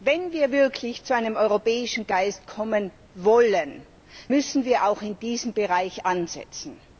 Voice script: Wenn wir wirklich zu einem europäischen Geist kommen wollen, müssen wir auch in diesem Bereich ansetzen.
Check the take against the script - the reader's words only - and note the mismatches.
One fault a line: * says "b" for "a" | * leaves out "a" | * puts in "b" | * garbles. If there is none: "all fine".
all fine